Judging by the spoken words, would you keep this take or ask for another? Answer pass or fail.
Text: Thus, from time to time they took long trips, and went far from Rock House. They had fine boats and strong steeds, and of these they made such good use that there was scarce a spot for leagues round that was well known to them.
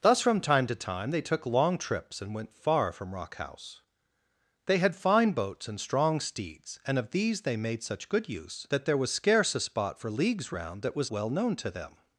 pass